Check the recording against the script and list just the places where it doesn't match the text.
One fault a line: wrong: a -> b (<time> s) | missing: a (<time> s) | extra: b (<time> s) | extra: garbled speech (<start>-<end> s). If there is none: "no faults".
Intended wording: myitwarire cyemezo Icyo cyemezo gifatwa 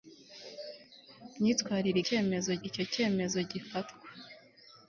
no faults